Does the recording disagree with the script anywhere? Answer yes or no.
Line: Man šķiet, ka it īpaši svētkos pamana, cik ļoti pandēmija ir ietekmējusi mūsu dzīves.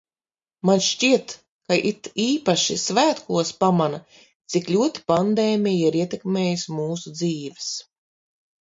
no